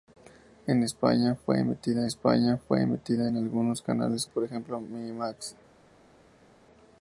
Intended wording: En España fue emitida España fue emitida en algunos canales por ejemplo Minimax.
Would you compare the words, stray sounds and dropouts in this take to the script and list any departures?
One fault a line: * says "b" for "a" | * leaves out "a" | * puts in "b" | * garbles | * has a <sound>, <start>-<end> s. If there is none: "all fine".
all fine